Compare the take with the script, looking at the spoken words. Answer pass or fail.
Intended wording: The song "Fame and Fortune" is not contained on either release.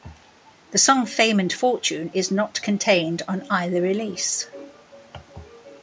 pass